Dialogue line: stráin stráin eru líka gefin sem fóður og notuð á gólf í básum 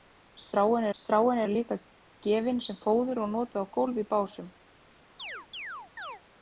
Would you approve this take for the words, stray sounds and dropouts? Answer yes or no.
no